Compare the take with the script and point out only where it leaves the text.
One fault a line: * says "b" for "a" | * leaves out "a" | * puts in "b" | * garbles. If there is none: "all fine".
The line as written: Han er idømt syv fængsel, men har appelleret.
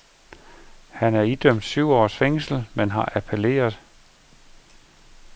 * puts in "års"